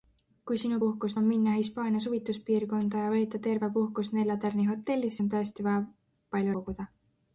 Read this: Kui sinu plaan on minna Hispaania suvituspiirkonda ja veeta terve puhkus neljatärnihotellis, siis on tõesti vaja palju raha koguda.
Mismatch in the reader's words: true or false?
true